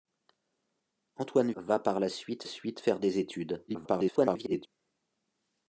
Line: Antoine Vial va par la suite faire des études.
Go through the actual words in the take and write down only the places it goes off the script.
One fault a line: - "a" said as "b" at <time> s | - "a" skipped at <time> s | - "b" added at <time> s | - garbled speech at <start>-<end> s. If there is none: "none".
- "Vial" skipped at 1.5 s
- "suite" added at 2.5 s
- garbled speech at 3.7-4.7 s